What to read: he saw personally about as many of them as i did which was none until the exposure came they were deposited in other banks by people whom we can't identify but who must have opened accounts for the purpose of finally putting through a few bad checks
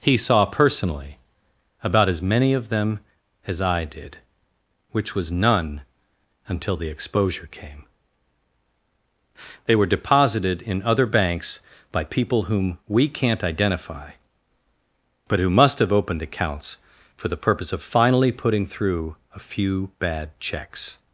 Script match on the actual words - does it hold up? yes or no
yes